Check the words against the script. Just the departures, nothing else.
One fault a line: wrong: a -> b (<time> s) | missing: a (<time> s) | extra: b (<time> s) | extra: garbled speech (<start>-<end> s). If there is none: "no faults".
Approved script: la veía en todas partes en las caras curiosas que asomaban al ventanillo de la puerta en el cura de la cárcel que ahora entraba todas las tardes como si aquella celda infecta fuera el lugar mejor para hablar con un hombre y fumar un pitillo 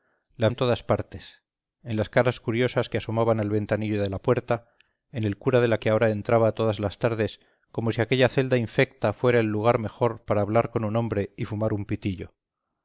missing: veía (0.5 s)
missing: cárcel (5.8 s)